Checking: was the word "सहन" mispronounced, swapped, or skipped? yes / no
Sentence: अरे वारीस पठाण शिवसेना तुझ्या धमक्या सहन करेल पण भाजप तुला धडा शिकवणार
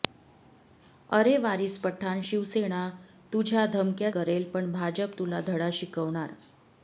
yes